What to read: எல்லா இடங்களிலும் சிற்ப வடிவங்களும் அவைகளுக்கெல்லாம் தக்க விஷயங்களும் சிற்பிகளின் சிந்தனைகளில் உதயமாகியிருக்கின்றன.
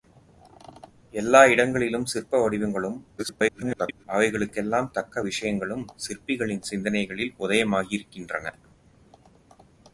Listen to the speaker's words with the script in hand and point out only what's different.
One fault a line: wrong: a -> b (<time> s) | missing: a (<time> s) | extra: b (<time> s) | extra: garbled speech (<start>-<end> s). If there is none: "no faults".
extra: garbled speech (3.2-4.0 s)